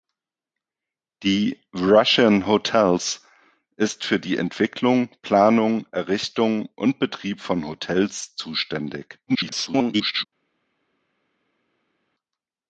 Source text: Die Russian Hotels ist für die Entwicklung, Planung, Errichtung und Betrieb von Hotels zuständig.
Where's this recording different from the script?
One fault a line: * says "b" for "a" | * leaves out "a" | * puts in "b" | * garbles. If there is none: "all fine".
* garbles